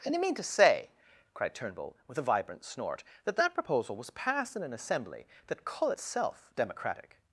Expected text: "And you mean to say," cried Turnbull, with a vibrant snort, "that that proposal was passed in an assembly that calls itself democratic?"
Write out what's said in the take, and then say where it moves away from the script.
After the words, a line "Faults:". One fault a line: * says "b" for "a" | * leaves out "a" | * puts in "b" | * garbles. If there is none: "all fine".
"And you mean to say," cried Turnbull, with a vibrant snort, "that that proposal was passed in an assembly that call itself democratic?"
Faults:
* says "call" for "calls"